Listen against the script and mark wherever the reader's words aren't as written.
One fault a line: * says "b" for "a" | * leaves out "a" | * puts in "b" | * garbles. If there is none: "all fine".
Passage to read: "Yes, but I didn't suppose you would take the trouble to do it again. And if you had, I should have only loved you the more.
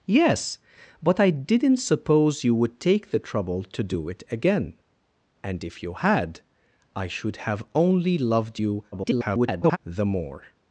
* garbles